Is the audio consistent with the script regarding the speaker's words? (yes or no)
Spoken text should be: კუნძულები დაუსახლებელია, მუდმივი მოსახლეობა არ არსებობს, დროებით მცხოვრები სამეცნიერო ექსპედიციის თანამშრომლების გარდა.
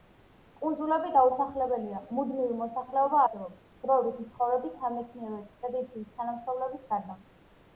no